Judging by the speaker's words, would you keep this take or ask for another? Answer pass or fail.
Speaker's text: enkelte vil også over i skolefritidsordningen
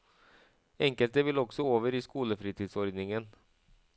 pass